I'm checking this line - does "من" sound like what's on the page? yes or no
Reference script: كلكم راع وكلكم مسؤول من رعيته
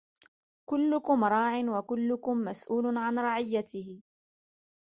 no